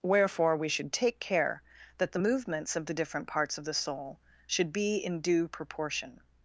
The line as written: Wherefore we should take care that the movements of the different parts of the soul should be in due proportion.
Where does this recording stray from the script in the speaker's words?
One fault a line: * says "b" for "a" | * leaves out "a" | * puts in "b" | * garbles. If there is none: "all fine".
all fine